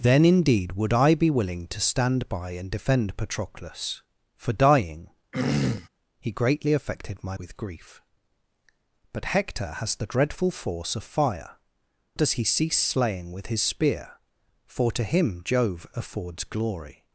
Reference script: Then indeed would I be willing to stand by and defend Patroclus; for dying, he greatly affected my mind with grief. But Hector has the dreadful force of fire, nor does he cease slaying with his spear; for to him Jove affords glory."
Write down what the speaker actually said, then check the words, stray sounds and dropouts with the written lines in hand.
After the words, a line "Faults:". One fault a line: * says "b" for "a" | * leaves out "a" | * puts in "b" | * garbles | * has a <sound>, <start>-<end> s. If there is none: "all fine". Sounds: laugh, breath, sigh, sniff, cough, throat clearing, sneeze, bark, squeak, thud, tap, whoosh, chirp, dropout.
Then indeed would I be willing to stand by and defend Patroclus; for dying, he greatly affected my with grief. But Hector has the dreadful force of fire, does he cease slaying with his spear; for to him Jove affords glory."
Faults:
* has a throat clearing, 5.3-5.9 s
* leaves out "mind"
* leaves out "nor"